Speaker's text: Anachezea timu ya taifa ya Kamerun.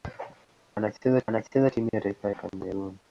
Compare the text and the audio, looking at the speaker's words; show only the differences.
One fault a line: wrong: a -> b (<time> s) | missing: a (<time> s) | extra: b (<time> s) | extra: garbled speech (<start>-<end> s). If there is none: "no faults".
extra: anachezea (1.3 s)
missing: ya (2.3 s)